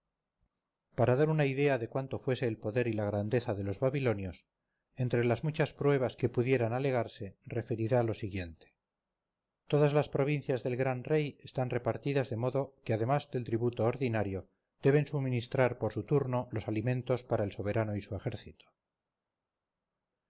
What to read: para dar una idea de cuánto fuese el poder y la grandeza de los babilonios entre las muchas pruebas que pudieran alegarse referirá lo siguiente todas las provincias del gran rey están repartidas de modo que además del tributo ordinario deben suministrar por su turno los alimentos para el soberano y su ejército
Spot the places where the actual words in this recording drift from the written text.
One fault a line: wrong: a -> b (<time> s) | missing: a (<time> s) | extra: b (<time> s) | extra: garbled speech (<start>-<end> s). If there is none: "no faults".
no faults